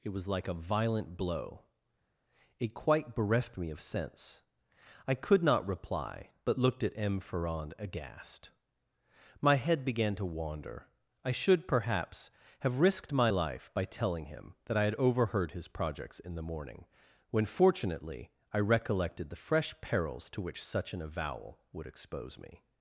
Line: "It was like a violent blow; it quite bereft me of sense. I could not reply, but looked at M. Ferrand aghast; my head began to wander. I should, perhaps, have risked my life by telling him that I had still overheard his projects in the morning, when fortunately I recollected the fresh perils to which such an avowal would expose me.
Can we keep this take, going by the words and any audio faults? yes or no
no